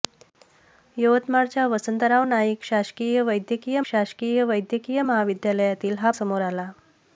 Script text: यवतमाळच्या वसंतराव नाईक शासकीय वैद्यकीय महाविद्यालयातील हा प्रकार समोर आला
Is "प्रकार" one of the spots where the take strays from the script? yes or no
yes